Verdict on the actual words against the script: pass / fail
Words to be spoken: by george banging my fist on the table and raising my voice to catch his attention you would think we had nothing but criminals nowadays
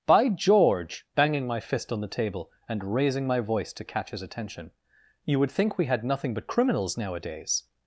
pass